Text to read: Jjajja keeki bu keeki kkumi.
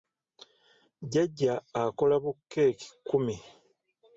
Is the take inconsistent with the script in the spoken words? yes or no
yes